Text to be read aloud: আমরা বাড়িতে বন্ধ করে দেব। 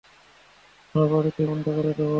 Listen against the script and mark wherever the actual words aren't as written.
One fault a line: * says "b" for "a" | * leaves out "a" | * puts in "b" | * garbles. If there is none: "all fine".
all fine